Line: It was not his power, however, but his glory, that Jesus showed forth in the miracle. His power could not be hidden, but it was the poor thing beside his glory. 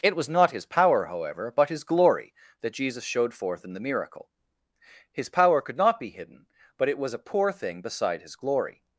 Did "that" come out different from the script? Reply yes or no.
no